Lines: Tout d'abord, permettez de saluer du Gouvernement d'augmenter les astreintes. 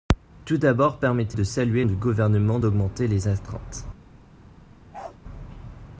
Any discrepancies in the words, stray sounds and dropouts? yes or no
yes